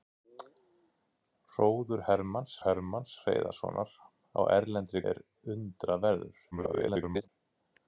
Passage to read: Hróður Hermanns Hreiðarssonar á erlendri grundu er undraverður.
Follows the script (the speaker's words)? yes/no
no